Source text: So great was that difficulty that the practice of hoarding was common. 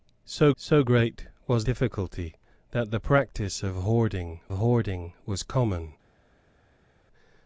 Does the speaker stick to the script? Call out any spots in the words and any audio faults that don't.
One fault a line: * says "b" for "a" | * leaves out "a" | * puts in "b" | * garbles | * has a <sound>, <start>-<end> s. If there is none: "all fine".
* puts in "so"
* leaves out "that"
* puts in "hoarding"